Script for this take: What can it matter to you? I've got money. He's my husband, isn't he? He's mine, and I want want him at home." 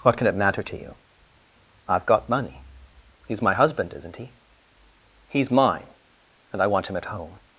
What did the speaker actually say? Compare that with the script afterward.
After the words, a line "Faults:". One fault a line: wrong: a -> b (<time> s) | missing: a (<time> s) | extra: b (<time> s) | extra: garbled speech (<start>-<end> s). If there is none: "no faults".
What can it matter to you? I've got money. He's my husband, isn't he? He's mine, and I want him at home."
Faults:
missing: want (6.9 s)